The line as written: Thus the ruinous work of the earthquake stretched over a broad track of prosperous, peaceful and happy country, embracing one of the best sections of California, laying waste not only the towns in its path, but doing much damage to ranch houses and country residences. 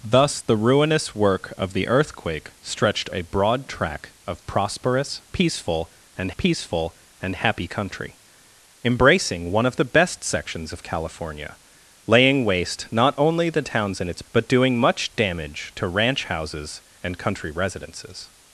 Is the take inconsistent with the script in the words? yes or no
yes